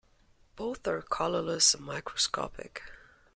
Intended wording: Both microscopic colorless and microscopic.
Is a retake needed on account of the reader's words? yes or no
yes